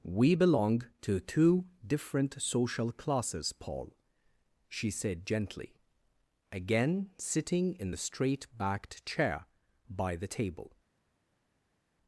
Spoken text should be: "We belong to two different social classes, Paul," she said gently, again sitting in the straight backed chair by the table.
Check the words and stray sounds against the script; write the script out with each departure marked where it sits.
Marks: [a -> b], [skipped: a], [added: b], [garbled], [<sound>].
"We belong to two different social classes, Paul," she said gently, again sitting in the straight backed chair by the table.